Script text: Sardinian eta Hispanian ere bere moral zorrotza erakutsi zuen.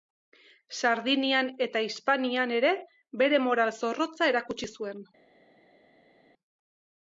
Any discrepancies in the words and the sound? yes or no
no